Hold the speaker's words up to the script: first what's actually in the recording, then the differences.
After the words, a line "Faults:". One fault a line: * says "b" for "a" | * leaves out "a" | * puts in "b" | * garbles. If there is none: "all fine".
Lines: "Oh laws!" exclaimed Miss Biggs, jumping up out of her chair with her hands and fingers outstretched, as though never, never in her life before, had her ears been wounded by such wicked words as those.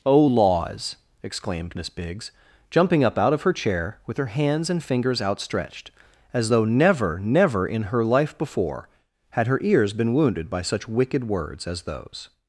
"Oh laws!" exclaimed Miss Biggs, jumping up out of her chair with her hands and fingers outstretched, as though never, never in her life before, had her ears been wounded by such wicked words as those.
Faults:
all fine